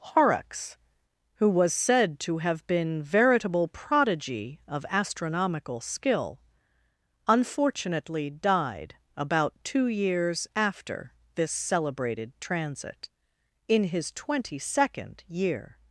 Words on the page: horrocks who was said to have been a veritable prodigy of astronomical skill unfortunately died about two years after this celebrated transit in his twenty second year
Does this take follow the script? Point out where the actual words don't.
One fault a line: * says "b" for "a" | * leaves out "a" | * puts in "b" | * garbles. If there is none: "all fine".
* leaves out "a"